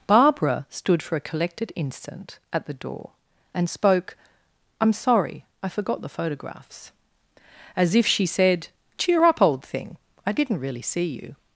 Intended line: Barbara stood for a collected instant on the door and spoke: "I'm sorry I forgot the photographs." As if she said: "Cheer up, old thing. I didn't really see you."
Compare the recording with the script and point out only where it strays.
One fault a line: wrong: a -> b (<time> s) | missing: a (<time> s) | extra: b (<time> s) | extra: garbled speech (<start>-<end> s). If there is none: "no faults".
wrong: on -> at (2.5 s)